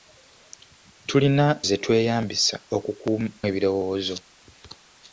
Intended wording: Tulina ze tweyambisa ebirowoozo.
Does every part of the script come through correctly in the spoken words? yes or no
yes